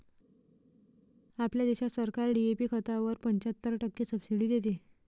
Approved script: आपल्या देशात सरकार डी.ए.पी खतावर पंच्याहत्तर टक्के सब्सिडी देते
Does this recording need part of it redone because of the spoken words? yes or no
no